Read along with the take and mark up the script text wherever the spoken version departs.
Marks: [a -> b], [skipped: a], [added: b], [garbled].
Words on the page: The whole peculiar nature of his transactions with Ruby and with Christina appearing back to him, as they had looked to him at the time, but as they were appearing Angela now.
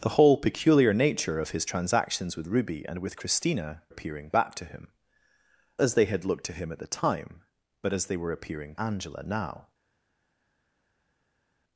The whole peculiar nature of his transactions with Ruby and with Christina appearing back to him, as they had looked to him at the time, but as they were appearing Angela now.